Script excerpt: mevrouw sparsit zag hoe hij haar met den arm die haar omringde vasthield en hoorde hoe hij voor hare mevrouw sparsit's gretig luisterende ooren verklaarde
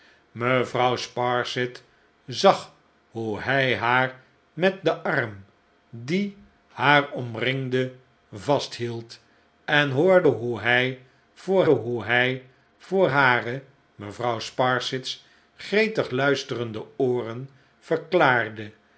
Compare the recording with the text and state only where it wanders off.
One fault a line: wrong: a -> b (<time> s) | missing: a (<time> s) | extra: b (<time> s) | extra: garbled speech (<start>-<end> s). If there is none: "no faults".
extra: hoe hij voor (11.7 s)